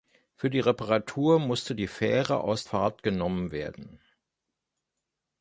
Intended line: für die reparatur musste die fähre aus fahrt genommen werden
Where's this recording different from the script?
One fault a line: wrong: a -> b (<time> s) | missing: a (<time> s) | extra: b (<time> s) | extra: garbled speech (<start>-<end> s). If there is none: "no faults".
no faults